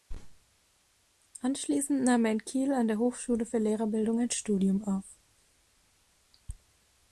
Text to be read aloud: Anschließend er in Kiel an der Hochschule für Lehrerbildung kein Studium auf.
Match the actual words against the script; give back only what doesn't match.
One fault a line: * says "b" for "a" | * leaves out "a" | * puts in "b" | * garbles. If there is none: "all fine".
* puts in "nahm"
* says "ein" for "kein"